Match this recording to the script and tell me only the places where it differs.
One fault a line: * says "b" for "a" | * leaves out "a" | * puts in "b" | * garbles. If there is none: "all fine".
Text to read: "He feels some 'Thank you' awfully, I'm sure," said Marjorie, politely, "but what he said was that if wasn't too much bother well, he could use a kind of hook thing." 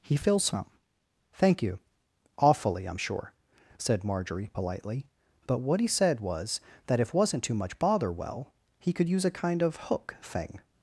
all fine